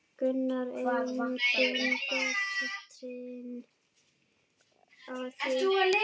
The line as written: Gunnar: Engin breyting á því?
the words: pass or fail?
pass